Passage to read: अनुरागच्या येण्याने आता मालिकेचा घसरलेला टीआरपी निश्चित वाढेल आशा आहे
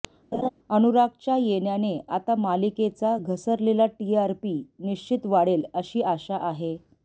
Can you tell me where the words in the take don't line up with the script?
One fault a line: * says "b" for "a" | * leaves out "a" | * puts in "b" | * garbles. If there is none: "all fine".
* puts in "अशी"